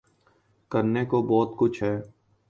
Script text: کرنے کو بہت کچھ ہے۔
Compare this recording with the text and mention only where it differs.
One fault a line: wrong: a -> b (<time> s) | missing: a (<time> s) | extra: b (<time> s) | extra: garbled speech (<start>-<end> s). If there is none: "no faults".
no faults